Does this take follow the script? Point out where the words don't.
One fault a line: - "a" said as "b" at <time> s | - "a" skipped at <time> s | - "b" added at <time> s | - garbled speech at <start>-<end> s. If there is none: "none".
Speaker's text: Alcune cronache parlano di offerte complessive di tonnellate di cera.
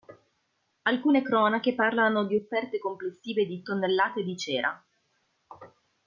none